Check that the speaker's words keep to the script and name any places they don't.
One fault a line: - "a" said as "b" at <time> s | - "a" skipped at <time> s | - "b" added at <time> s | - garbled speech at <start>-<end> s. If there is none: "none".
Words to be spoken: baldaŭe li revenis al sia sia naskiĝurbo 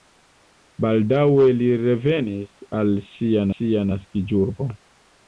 none